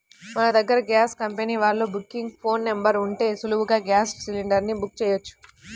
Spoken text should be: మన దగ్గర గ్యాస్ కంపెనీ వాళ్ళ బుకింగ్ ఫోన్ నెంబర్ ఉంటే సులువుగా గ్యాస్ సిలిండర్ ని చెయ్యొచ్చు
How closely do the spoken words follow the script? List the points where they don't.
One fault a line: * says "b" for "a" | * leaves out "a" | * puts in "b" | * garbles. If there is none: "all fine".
* puts in "బుక్"